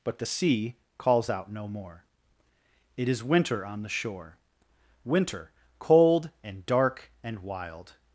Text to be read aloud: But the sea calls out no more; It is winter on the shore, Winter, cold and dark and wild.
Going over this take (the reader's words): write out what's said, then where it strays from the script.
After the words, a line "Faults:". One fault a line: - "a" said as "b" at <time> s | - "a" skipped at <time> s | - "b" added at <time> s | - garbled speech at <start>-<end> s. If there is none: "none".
But the sea calls out no more; It is winter on the shore, Winter, cold and dark and wild.
Faults:
none